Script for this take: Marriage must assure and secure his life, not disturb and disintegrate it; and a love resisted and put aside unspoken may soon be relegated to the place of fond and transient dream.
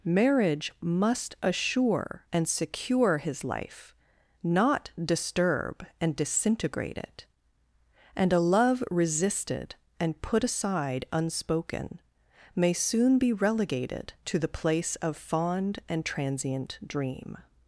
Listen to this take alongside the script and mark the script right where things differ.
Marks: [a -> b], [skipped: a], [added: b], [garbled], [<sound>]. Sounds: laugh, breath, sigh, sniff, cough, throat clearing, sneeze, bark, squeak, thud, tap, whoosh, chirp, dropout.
Marriage must assure and secure his life, not disturb and disintegrate it; and a love resisted and put aside unspoken may soon be relegated to the place of fond and transient dream.